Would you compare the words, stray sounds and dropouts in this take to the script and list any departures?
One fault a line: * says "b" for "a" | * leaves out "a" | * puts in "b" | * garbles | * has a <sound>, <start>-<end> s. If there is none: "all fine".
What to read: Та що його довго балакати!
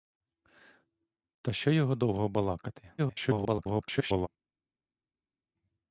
* garbles